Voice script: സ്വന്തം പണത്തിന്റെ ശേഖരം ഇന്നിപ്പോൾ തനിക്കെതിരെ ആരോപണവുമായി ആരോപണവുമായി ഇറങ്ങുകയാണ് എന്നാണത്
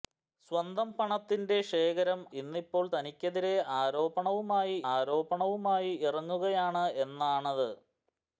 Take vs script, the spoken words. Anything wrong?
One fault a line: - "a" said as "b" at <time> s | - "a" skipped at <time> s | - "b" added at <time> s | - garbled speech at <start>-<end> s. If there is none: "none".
none